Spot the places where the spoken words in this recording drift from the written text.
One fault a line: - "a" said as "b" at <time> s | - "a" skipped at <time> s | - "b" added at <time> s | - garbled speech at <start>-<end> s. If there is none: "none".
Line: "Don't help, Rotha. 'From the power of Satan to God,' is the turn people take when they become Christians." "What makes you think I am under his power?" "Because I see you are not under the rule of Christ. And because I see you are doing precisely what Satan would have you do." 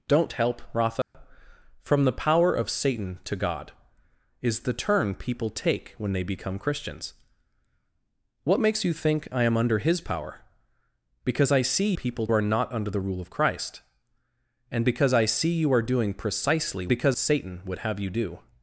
- "you" said as "people" at 11.9 s
- "what" said as "because" at 16.9 s